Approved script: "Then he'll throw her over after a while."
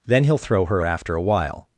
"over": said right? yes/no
no